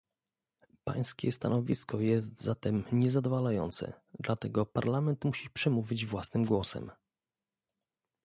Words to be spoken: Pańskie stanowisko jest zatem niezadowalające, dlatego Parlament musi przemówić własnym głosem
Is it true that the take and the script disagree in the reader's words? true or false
false